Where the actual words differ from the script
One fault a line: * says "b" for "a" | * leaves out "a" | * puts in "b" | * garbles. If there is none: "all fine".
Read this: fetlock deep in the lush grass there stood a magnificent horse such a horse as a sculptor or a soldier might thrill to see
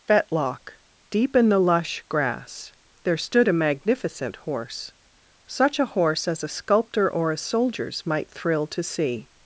* says "soldiers" for "soldier"